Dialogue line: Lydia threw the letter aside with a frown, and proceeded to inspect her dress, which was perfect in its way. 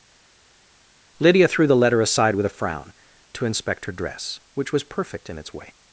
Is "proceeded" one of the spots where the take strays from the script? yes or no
yes